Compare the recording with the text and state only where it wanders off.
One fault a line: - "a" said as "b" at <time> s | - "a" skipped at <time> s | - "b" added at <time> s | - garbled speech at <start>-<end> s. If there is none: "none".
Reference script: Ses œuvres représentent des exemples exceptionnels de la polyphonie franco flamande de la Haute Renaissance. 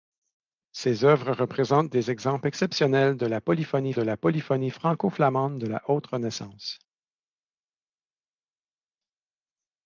- "de la polyphonie" added at 3.9 s